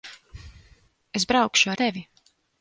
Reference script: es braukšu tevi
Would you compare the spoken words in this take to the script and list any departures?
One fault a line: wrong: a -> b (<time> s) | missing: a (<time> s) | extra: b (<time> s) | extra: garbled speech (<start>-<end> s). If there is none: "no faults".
no faults